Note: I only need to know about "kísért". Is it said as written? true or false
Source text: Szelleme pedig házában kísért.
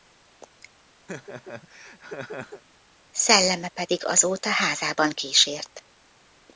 true